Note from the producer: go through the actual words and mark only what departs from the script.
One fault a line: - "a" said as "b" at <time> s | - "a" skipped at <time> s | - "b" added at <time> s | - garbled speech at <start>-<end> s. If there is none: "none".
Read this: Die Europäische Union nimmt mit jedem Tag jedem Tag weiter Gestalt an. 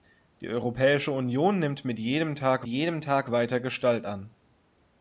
none